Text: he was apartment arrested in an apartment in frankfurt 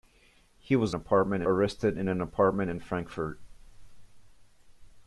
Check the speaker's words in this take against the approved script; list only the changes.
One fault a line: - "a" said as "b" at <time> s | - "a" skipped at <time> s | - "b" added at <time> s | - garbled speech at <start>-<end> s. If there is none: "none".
none